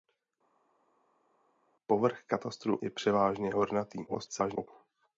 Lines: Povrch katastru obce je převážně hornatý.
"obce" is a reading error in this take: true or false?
true